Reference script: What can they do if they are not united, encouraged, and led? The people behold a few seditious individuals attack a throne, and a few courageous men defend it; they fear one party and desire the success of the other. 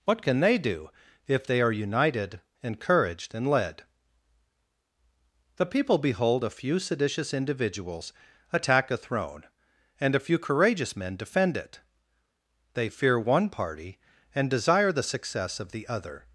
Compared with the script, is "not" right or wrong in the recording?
wrong